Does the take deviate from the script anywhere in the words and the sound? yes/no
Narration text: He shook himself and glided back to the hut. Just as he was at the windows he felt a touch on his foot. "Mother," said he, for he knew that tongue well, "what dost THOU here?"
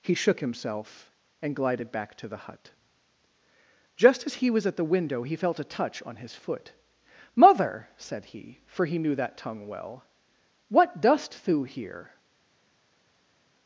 yes